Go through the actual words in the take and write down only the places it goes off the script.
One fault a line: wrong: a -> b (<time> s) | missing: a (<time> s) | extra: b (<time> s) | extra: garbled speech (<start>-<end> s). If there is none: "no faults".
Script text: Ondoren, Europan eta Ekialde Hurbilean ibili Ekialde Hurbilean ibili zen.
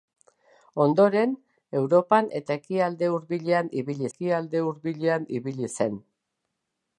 no faults